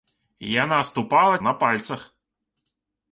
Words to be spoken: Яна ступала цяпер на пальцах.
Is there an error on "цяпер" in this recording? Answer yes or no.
yes